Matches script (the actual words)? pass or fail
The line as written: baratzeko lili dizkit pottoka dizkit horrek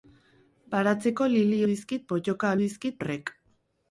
pass